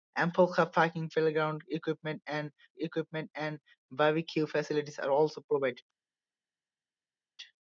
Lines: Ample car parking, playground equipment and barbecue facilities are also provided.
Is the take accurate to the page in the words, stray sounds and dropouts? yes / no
no